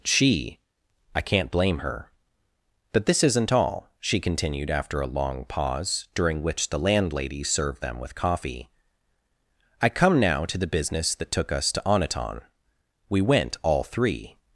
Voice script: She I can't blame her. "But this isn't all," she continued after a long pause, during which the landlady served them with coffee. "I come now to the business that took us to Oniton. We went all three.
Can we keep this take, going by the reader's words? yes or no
yes